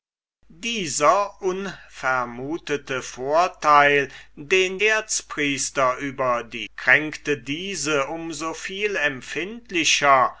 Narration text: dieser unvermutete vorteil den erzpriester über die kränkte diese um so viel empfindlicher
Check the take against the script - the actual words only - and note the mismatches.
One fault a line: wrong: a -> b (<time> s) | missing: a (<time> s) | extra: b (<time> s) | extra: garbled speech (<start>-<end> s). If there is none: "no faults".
no faults